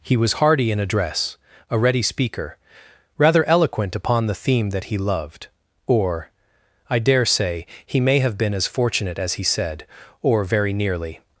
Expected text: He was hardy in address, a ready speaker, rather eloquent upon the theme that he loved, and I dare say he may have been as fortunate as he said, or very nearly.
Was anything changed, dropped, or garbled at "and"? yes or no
yes